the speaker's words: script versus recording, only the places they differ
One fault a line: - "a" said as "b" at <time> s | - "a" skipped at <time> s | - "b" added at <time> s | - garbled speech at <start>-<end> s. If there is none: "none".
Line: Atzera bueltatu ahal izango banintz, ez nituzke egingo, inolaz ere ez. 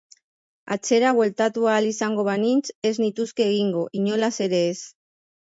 none